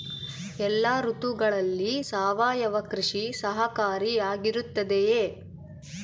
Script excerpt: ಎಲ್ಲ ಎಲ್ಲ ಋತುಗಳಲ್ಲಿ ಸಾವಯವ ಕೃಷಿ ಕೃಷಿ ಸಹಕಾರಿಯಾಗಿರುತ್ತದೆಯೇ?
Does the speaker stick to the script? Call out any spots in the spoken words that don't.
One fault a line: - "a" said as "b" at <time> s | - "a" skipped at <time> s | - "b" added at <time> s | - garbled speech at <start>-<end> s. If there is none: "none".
- "ಎಲ್ಲ" skipped at 0.8 s
- "ಕೃಷಿ" skipped at 3.3 s